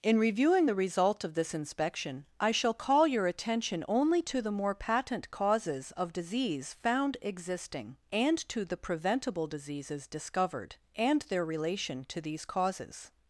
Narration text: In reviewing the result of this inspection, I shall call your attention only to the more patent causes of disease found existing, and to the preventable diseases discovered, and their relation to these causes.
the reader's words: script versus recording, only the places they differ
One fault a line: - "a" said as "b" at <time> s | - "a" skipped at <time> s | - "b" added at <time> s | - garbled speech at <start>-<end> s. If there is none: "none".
none